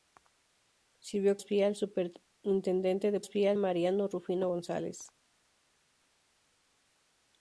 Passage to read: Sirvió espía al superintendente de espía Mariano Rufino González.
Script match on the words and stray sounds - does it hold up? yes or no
yes